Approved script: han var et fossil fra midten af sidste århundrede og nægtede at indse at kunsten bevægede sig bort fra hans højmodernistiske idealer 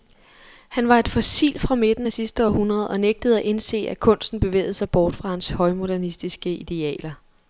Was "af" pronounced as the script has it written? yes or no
yes